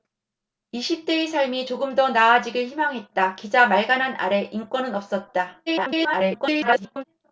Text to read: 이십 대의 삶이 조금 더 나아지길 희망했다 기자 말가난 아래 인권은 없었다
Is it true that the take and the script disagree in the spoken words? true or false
true